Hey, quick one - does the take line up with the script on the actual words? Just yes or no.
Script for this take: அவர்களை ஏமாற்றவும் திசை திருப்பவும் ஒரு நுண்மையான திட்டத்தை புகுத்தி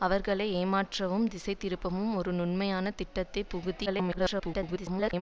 no